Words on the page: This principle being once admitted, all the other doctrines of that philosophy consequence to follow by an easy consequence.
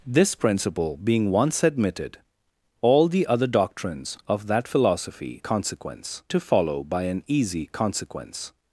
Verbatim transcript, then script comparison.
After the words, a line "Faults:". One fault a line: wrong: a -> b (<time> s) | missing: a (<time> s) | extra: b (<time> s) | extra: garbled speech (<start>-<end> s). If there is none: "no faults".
This principle being once admitted, all the other doctrines of that philosophy consequence to follow by an easy consequence.
Faults:
no faults